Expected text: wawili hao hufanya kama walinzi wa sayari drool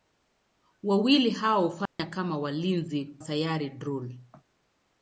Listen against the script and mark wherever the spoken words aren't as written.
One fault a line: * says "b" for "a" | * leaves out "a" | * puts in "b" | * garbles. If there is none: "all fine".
* leaves out "wa"